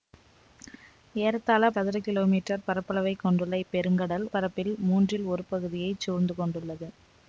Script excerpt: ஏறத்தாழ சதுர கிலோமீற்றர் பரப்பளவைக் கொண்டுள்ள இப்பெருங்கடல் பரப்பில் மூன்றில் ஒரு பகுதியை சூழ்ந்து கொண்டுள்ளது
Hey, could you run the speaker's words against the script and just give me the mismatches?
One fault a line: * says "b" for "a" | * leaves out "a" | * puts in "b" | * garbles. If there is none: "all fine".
all fine